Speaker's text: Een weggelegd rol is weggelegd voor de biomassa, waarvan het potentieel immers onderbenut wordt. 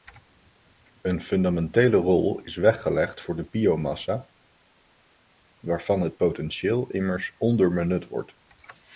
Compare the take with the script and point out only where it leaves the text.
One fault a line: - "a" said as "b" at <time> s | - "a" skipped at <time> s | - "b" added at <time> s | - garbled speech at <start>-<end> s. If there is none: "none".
- "weggelegd" said as "fundamentele" at 1.2 s